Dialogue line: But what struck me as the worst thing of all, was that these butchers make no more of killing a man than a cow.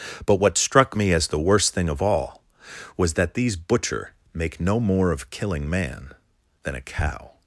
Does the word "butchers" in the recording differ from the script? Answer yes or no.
yes